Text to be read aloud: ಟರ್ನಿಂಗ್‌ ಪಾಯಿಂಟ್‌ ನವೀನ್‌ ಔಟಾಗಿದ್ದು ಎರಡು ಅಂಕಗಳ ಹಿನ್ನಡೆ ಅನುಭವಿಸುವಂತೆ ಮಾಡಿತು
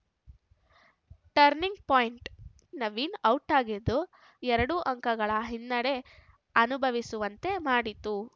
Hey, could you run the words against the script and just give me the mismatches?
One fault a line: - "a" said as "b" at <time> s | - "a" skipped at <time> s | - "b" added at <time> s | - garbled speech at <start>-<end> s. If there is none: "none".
none